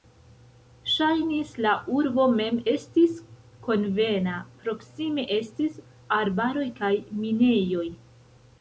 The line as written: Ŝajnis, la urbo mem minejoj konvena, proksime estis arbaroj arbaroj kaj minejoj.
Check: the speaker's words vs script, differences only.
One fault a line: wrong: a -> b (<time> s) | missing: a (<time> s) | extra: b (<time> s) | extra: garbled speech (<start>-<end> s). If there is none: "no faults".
wrong: minejoj -> estis (2.7 s)
missing: arbaroj (6.7 s)